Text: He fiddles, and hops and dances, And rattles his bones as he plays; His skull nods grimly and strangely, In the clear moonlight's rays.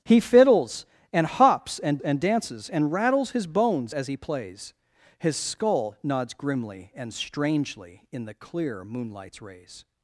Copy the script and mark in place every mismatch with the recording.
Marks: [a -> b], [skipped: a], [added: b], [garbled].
He fiddles, and hops and [added: and] dances, And rattles his bones as he plays; His skull nods grimly and strangely, In the clear moonlight's rays.